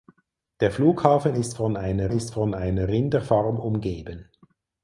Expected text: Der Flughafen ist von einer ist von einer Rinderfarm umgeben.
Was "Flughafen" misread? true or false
false